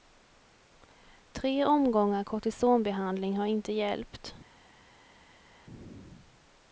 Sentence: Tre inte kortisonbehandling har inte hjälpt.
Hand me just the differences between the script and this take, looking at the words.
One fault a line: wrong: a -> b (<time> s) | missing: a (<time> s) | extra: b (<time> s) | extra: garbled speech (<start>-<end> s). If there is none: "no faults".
wrong: inte -> omgångar (1.6 s)